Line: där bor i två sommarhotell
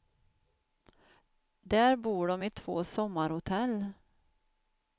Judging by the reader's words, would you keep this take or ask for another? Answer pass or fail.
fail